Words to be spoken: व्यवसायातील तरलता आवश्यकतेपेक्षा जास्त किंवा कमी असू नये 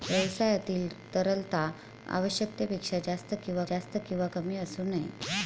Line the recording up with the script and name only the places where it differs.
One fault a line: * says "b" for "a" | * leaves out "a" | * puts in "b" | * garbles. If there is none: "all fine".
* puts in "जास्त किंवा"